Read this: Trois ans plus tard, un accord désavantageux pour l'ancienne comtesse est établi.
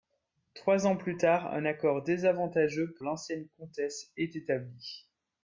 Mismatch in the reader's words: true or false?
true